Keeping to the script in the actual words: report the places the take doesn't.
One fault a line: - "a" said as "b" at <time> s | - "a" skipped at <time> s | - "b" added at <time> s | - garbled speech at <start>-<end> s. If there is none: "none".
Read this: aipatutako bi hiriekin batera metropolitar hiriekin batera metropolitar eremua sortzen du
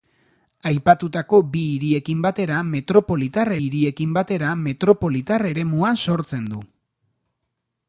none